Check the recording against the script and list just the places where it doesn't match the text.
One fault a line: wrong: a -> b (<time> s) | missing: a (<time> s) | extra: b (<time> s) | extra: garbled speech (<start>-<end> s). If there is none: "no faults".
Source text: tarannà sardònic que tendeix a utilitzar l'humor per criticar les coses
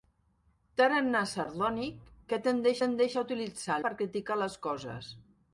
extra: tendeix (2.8 s)
missing: l'humor (3.8 s)